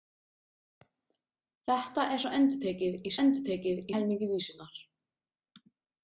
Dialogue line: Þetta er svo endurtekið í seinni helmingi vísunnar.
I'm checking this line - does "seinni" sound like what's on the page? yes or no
no